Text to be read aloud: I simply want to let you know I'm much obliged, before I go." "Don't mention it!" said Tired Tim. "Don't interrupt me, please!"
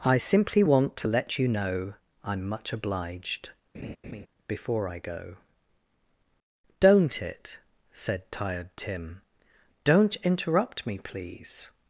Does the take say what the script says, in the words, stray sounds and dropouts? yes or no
no